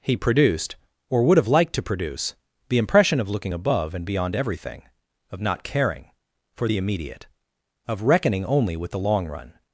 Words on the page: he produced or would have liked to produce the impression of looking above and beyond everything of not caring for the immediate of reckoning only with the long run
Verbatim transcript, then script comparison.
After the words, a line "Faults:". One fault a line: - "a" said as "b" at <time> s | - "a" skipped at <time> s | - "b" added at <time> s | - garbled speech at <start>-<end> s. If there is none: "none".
he produced or would have liked to produce the impression of looking above and beyond everything of not caring for the immediate of reckoning only with the long run
Faults:
none